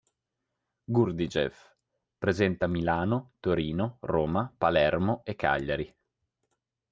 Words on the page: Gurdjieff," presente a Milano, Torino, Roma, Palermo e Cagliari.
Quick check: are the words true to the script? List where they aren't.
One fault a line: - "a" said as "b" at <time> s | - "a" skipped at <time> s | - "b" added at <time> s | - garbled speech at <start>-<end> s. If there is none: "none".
none